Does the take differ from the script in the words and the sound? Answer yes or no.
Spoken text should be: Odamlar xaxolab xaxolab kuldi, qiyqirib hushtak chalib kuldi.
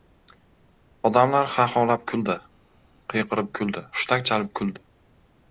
yes